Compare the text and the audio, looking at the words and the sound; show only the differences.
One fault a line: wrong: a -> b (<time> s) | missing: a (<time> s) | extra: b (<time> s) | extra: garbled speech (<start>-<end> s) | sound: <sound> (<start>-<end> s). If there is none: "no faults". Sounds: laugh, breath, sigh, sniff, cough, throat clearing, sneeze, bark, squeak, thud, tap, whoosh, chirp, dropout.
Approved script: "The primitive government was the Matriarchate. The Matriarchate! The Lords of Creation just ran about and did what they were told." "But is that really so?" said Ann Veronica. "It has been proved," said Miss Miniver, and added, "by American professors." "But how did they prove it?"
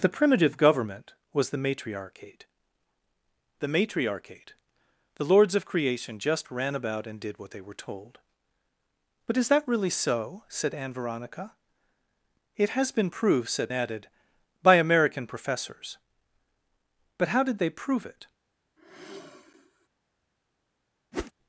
missing: Miss Miniver and (13.7 s)
sound: sigh (18.8-19.9 s)
sound: whoosh (21.1-21.3 s)